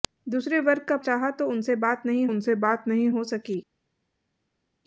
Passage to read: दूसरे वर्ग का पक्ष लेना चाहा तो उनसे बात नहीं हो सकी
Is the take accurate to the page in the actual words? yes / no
no